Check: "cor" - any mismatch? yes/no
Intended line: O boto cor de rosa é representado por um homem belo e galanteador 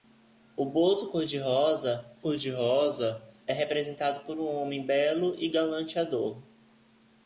no